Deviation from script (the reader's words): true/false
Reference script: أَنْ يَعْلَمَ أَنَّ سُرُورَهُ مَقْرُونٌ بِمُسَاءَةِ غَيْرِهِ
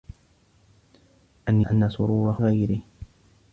true